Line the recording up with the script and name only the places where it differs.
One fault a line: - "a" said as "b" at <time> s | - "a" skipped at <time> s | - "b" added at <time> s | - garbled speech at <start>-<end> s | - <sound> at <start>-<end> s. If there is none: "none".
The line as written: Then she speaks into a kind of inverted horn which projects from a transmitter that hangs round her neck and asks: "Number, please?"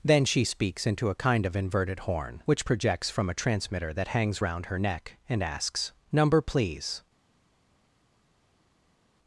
none